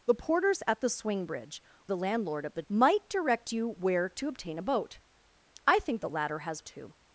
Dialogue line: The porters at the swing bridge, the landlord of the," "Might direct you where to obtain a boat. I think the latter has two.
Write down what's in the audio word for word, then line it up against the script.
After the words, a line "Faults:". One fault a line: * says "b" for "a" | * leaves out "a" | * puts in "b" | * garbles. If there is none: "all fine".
The porters at the swing bridge, the landlord of the," "Might direct you where to obtain a boat. I think the latter has two.
Faults:
all fine